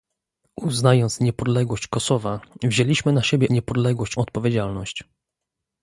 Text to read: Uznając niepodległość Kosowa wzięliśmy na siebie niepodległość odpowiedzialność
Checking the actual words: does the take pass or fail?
pass